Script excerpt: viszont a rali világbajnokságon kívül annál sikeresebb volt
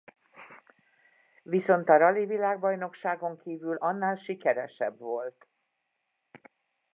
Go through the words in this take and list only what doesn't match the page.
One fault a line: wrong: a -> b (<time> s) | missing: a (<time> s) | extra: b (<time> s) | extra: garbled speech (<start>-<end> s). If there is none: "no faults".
no faults